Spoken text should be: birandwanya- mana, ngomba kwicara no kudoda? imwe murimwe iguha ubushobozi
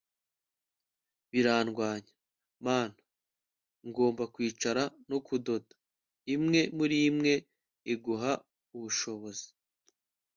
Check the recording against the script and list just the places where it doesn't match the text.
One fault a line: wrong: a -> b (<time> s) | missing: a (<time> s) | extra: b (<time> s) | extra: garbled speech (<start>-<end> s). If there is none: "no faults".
no faults